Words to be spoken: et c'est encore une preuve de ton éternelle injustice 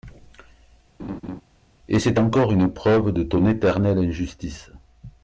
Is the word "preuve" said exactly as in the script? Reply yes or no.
yes